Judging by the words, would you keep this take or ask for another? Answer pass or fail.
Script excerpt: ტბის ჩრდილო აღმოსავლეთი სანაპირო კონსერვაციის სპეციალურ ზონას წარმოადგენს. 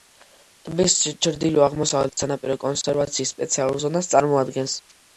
pass